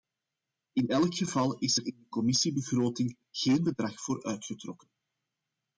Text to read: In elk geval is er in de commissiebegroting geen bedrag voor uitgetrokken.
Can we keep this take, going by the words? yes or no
yes